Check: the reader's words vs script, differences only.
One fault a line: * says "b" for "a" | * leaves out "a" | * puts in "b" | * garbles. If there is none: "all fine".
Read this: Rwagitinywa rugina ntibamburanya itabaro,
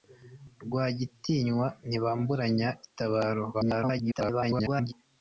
* leaves out "rugina"
* garbles